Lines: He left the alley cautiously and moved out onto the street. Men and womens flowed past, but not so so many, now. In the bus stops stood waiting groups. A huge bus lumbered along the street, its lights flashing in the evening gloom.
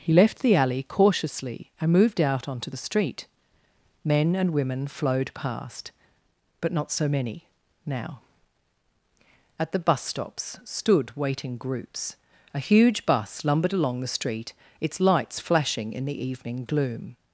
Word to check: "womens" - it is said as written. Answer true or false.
false